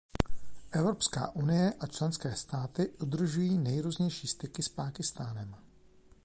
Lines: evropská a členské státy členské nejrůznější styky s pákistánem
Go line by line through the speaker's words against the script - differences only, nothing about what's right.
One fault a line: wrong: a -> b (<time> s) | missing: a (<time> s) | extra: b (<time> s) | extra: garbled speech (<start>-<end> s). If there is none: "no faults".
extra: unie (1.4 s)
wrong: členské -> udržují (2.9 s)